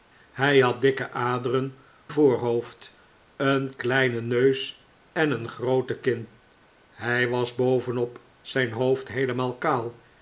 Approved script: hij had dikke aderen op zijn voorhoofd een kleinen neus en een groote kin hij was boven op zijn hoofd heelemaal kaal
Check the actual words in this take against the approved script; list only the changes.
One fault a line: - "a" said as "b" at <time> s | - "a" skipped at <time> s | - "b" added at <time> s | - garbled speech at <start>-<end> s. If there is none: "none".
- "op zijn" skipped at 1.8 s